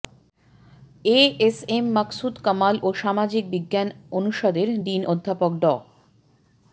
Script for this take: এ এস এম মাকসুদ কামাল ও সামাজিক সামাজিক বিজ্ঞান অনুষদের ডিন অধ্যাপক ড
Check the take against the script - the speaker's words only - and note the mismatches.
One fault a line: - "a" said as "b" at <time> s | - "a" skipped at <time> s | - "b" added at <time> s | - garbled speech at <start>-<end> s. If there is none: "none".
- "সামাজিক" skipped at 3.4 s